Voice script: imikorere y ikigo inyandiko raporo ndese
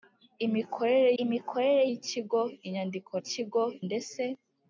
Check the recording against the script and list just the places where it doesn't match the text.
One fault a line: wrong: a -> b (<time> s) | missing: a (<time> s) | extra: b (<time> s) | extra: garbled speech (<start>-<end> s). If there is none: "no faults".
extra: imikorere (1.2 s)
wrong: raporo -> ikigo (3.2 s)